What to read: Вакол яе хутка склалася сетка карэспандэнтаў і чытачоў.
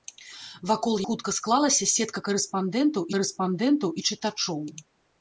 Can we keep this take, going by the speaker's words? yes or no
no